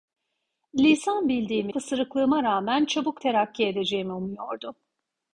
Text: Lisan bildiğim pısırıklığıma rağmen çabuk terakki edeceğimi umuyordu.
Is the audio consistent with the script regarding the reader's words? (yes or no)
yes